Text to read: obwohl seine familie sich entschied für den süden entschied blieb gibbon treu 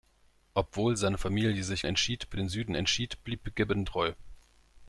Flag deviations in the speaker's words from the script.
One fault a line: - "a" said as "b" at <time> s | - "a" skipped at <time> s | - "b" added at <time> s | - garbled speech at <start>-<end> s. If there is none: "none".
none